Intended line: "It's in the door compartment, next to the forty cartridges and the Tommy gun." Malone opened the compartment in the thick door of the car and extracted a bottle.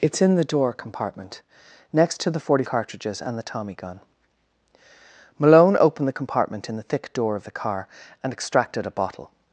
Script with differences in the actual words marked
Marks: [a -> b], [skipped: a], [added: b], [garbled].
"It's in the door compartment, next to the forty cartridges and the Tommy gun." Malone opened the compartment in the thick door of the car and extracted a bottle.